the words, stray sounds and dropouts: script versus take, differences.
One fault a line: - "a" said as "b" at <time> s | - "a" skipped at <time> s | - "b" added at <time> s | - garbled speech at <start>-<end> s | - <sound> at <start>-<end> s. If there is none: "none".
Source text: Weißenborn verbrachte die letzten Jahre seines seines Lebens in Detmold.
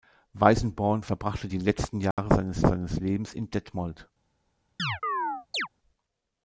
- dropout at 2.1-2.2 s
- chirp at 4.8-5.7 s